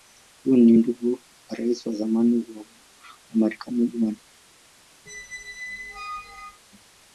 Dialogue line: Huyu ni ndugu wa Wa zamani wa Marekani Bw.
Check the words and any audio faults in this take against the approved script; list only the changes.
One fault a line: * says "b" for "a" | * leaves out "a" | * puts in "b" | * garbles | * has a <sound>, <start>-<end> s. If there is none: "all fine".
* puts in "Rais"
* has a squeak, 5.1-6.6 s